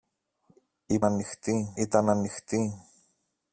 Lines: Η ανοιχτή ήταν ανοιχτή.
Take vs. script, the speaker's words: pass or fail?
pass